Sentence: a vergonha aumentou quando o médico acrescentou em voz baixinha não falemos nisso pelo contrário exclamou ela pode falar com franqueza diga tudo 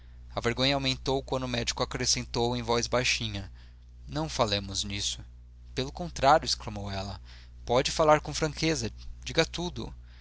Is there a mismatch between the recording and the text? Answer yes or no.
no